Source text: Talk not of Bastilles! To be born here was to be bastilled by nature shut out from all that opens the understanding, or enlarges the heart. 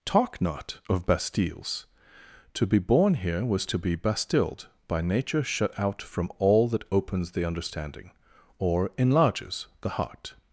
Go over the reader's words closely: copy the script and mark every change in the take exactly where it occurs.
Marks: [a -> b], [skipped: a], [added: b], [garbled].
Talk not of Bastilles! To be born here was to be bastilled by nature shut out from all that opens the understanding, or enlarges the heart.